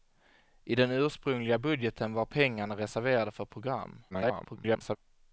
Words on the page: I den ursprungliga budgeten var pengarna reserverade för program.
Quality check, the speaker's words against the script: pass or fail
fail